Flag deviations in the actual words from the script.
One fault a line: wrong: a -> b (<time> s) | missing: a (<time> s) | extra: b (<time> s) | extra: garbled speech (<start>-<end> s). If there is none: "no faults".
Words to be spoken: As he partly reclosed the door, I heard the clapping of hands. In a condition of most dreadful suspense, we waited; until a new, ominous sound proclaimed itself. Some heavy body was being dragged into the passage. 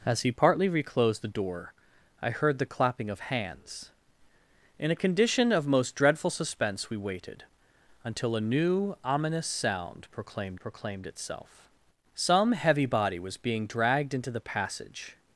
extra: proclaimed (10.6 s)